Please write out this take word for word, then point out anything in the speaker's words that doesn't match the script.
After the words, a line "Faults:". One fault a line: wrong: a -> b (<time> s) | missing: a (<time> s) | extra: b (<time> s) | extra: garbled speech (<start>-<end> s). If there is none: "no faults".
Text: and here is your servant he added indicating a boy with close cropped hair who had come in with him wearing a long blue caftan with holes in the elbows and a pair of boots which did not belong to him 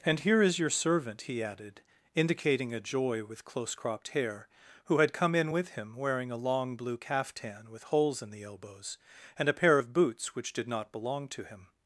and here is your servant he added indicating a joy with close cropped hair who had come in with him wearing a long blue caftan with holes in the elbows and a pair of boots which did not belong to him
Faults:
wrong: boy -> joy (2.8 s)